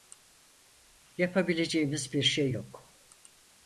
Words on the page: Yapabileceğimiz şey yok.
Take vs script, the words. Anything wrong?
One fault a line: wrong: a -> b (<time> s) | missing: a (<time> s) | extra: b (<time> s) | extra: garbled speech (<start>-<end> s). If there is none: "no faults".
extra: bir (2.1 s)